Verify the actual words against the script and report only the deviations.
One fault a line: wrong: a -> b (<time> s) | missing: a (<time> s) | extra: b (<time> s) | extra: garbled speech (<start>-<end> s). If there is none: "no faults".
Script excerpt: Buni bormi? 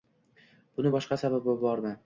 extra: boshqa sababi (0.9 s)